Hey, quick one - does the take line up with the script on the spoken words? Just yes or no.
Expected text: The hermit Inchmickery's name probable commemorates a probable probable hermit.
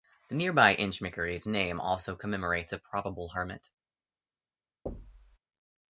no